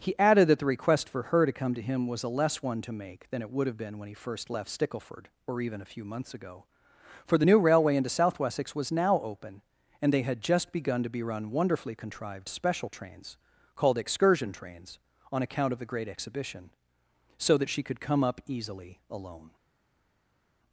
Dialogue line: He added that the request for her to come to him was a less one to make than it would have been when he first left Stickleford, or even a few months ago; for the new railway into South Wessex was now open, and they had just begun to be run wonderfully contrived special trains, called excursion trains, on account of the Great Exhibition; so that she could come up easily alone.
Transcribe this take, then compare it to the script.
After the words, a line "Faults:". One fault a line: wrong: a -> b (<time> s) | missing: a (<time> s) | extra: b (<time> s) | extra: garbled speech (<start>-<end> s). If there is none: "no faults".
He added that the request for her to come to him was a less one to make than it would have been when he first left Stickleford, or even a few months ago; for the new railway into South Wessex was now open, and they had just begun to be run wonderfully contrived special trains, called excursion trains, on account of the Great Exhibition; so that she could come up easily alone.
Faults:
no faults